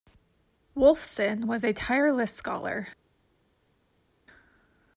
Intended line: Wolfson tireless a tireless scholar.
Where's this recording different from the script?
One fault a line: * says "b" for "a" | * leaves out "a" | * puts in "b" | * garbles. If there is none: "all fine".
* says "was" for "tireless"